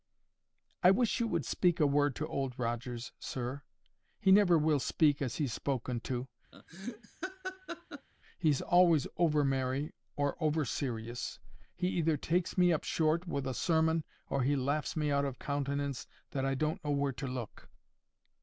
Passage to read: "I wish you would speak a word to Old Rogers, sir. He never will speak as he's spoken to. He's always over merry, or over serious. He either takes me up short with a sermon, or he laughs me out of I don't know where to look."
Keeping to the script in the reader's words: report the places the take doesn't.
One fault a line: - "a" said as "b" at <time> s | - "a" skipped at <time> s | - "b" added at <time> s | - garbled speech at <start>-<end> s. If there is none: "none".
- "countenance that" added at 15.4 s